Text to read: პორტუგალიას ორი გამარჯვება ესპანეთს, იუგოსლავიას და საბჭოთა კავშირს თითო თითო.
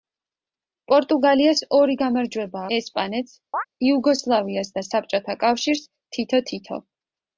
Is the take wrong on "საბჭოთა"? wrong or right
right